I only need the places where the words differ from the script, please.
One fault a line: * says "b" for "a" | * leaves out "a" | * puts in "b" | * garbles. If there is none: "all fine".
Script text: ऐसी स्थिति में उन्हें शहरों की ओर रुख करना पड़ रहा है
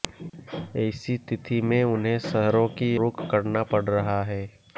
* leaves out "ओर"